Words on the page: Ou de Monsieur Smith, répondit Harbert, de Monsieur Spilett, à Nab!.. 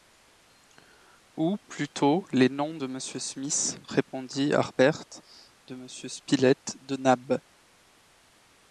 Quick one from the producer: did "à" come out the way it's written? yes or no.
no